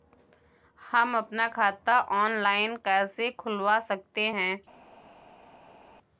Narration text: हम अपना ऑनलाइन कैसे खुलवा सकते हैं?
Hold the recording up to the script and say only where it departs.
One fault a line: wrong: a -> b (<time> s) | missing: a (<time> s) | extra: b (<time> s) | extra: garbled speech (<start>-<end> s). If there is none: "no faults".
extra: खाता (1.5 s)